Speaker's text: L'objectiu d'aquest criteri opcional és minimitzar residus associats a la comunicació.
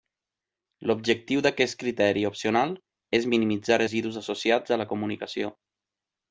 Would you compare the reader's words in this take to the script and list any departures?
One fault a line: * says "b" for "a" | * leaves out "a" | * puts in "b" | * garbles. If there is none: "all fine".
all fine